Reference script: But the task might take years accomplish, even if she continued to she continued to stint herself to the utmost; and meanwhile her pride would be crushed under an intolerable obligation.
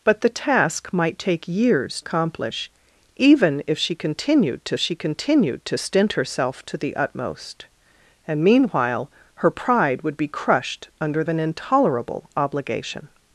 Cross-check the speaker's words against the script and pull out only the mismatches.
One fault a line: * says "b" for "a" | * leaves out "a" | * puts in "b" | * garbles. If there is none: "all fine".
all fine